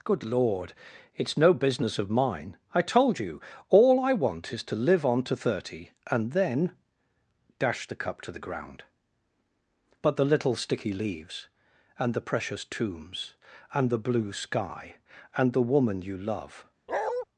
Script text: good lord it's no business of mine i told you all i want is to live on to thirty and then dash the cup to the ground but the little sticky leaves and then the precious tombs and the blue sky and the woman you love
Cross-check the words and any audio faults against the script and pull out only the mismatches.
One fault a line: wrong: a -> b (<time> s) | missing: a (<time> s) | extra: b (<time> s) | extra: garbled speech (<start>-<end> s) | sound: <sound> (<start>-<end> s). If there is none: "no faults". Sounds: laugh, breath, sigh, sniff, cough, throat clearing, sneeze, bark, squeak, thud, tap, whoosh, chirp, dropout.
missing: then (12.1 s)
sound: bark (16.9-17.3 s)